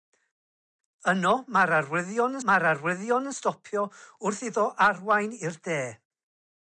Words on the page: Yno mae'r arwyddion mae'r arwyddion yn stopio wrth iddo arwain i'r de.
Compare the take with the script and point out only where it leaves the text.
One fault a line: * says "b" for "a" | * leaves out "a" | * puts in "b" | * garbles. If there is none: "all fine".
all fine